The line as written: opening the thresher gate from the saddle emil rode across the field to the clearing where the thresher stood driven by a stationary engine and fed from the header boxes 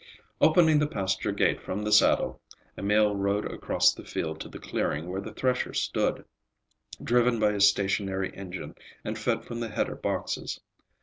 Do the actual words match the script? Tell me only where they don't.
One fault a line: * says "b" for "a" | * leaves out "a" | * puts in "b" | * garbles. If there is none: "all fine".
* says "pasture" for "thresher"